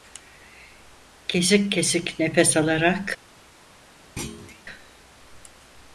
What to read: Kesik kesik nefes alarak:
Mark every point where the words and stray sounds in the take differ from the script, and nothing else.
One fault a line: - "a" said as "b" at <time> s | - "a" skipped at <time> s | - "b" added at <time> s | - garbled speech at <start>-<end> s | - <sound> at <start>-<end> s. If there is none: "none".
- thud at 4.2-4.6 s